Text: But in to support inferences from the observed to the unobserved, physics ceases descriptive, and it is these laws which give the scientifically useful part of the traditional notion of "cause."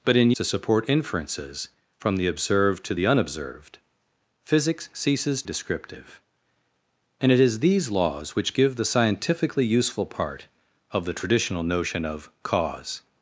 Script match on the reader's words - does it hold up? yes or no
yes